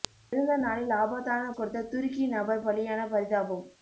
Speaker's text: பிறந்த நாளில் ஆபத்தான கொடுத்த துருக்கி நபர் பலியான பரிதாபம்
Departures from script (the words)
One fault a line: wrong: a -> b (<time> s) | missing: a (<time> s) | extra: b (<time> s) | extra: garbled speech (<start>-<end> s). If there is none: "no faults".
no faults